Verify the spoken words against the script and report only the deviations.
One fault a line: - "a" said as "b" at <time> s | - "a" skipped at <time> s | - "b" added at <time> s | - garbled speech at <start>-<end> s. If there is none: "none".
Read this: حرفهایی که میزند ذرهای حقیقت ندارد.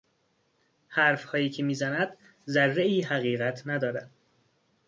none